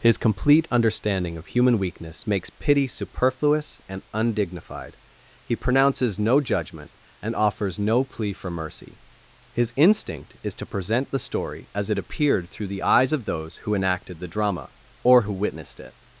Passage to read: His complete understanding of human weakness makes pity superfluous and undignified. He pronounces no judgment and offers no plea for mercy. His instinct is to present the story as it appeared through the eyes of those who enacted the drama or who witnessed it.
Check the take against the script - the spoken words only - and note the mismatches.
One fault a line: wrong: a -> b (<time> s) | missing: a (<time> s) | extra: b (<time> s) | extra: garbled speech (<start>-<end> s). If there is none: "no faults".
no faults